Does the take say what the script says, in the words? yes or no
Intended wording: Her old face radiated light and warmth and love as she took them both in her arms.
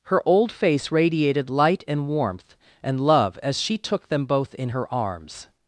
yes